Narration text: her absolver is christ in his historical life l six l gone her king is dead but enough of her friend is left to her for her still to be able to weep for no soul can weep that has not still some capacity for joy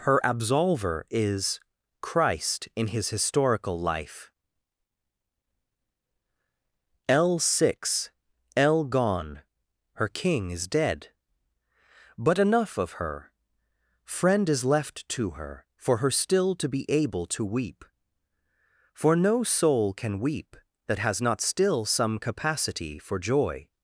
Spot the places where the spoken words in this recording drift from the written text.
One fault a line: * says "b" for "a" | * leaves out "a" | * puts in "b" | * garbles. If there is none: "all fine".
all fine